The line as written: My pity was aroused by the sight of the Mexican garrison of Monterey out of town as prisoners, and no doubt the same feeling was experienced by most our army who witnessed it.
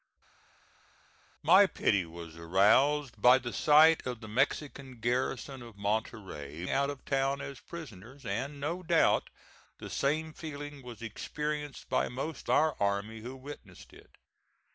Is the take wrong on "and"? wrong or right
right